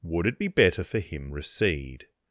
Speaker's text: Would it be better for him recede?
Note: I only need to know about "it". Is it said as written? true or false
true